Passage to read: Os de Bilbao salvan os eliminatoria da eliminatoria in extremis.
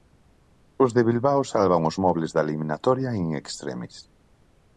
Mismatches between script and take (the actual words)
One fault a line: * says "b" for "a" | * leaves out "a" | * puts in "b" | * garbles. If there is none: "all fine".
* says "mobles" for "eliminatoria"